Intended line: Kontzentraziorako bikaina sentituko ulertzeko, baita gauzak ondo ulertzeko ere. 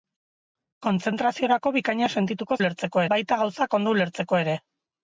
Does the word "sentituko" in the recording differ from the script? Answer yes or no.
no